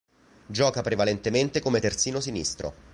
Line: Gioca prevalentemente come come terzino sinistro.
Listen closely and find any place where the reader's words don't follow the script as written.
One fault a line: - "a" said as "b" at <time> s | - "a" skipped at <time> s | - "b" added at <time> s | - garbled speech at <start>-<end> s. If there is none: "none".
- "come" skipped at 1.8 s